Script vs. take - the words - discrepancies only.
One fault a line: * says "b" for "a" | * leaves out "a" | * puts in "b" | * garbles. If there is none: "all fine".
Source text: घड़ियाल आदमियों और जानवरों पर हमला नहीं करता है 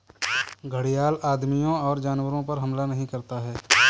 all fine